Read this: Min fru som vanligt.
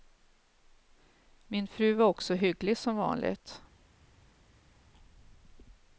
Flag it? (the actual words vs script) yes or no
yes